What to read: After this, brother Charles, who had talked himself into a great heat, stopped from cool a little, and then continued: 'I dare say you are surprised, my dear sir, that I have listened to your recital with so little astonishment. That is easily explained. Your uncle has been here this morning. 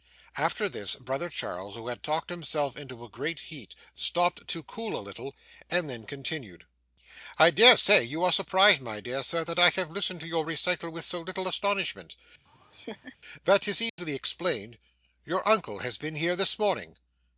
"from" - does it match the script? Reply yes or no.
no